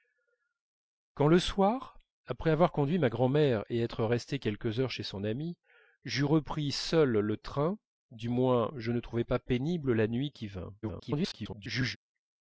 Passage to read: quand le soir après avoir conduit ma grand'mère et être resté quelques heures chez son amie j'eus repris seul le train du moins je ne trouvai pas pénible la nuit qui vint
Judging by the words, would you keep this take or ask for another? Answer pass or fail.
fail